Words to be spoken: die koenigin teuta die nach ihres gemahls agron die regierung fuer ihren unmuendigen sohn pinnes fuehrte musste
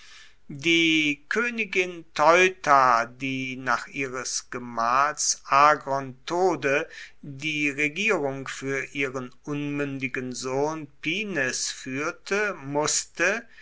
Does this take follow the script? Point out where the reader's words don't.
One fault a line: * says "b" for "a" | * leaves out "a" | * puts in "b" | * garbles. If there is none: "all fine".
* puts in "tode"